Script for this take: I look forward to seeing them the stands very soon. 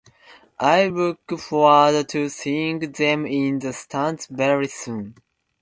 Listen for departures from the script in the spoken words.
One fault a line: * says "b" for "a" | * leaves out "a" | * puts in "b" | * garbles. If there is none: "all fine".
* puts in "in"